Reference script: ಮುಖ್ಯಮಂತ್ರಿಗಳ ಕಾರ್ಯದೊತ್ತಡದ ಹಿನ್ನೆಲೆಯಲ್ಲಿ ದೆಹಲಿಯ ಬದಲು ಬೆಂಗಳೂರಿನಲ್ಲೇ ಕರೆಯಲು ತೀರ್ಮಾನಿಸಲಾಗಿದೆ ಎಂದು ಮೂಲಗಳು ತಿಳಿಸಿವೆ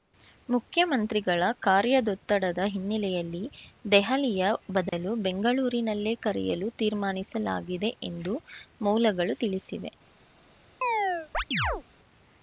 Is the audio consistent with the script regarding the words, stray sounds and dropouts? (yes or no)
no